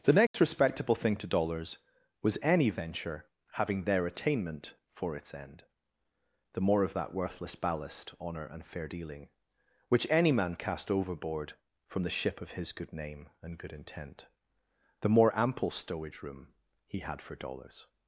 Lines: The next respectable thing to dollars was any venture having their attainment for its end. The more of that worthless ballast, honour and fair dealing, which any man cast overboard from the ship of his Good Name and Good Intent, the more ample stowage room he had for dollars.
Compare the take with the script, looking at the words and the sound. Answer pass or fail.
fail